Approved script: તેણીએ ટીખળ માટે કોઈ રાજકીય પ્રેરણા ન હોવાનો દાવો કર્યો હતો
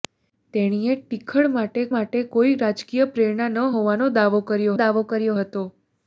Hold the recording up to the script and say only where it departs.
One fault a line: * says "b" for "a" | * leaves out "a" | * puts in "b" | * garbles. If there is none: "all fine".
* puts in "માટે"
* puts in "દાવો કર્યો"